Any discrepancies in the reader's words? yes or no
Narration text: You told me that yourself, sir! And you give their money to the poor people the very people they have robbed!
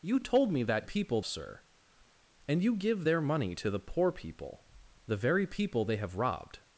yes